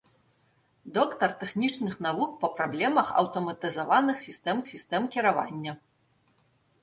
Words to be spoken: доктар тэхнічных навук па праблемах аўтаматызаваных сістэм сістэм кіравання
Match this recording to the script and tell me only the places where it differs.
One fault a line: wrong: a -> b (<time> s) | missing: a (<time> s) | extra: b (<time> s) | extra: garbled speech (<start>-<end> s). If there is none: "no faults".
no faults